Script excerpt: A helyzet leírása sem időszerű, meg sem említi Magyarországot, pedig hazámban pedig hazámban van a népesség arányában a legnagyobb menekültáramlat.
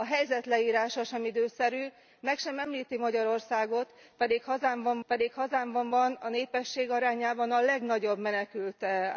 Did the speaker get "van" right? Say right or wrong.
right